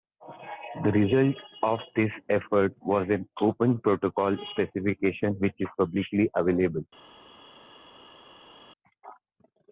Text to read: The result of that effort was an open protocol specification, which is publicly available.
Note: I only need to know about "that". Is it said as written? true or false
false